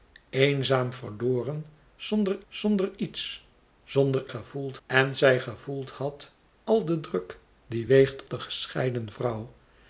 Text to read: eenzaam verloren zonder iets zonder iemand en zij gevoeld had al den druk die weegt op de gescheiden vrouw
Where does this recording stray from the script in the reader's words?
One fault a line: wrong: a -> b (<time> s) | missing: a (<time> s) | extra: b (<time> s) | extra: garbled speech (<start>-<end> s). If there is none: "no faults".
extra: zonder (2.5 s)
wrong: iemand -> gevoeld (4.3 s)
missing: op (8.2 s)